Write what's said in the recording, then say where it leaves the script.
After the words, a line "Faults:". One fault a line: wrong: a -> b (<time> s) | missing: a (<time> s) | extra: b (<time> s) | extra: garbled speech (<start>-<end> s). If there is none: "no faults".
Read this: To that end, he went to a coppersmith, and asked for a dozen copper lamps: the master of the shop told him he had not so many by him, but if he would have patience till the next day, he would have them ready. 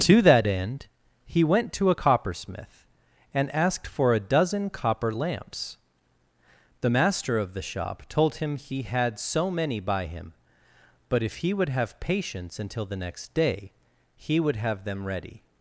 To that end, he went to a coppersmith, and asked for a dozen copper lamps: the master of the shop told him he had so many by him, but if he would have patience until the next day, he would have them ready.
Faults:
missing: not (9.2 s)
wrong: till -> until (12.6 s)